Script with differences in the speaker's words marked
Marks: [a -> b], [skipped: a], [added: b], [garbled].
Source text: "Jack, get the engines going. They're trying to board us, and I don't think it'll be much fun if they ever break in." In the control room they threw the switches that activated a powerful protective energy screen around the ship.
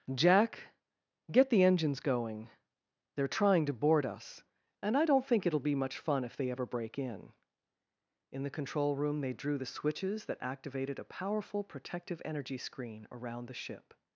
"Jack, get the engines going. They're trying to board us, and I don't think it'll be much fun if they ever break in." In the control room they [threw -> drew] the switches that activated a powerful protective energy screen around the ship.